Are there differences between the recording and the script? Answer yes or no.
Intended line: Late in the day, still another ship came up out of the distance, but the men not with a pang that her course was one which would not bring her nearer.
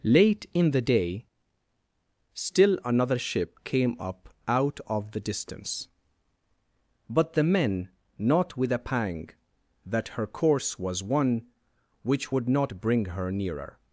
no